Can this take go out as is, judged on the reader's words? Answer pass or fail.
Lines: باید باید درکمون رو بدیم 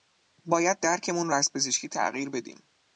fail